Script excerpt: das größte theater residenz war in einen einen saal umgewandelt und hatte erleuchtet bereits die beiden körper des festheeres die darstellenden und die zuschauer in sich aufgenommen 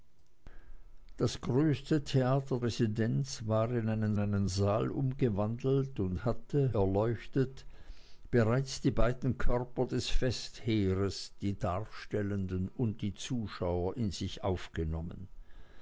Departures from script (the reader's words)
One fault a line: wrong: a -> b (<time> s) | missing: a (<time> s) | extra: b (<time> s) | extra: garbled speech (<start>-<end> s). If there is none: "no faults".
no faults